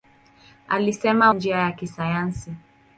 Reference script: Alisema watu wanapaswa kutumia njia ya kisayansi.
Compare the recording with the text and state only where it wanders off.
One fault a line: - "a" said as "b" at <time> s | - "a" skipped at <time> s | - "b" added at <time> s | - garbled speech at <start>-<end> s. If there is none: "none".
- "watu wanapaswa kutumia" skipped at 1.3 s